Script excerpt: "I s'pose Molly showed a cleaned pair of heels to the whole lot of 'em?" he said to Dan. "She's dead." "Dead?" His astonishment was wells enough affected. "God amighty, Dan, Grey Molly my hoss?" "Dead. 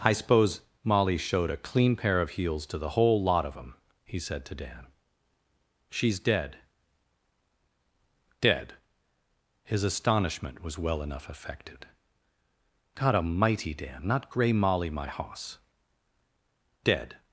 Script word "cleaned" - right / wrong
wrong